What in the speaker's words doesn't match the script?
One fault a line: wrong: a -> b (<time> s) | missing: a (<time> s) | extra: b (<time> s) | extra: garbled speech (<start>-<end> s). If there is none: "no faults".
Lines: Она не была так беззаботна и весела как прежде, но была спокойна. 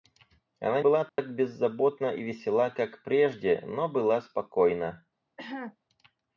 missing: не (0.8 s)